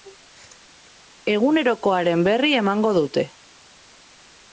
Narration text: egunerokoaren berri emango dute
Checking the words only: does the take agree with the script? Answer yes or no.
yes